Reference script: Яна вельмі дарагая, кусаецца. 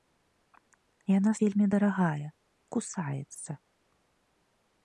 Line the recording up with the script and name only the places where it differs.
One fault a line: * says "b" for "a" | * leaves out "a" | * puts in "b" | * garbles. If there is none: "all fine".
all fine